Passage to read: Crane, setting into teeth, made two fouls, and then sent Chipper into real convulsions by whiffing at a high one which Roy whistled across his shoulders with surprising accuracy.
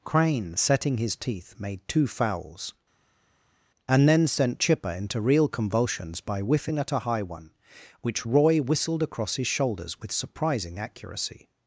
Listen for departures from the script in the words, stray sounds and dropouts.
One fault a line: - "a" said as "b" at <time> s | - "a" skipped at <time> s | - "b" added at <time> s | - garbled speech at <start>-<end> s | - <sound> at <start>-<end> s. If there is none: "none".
- "into" said as "his" at 1.0 s